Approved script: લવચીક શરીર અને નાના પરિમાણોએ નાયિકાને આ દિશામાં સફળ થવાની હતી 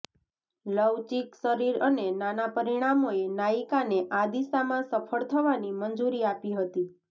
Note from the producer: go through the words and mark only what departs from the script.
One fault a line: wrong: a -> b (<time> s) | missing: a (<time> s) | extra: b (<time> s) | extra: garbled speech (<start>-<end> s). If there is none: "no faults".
extra: મંજૂરી આપી (5.8 s)